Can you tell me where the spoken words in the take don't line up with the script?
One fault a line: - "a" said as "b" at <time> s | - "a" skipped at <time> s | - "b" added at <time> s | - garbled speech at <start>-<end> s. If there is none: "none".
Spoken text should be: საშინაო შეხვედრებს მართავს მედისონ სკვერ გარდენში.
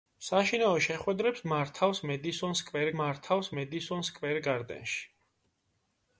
- "მართავს მედისონ სკვერ" added at 3.0 s